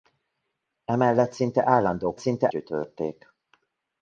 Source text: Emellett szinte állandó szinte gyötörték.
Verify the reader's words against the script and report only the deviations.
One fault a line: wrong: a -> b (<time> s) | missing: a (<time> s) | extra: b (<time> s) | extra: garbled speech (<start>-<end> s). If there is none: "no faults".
no faults